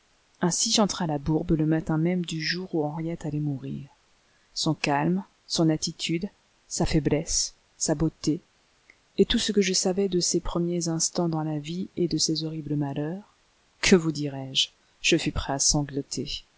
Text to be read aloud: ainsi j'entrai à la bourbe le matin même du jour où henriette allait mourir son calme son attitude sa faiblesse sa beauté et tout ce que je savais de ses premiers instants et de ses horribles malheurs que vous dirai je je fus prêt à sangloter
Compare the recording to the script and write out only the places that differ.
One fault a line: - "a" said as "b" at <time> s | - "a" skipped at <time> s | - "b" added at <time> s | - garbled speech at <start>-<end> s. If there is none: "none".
- "dans la vie" added at 11.3 s